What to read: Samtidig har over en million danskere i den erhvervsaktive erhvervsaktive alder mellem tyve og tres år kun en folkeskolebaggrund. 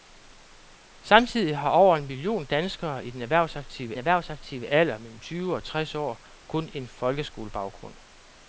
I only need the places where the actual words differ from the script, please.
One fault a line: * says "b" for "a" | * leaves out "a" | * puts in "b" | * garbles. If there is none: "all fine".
all fine